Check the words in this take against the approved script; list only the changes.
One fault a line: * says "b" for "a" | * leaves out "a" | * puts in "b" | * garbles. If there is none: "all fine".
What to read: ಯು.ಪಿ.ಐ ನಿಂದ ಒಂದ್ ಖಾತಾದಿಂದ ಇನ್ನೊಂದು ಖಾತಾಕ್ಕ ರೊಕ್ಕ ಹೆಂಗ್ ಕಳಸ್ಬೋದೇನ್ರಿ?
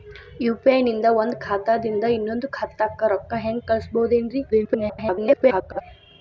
* garbles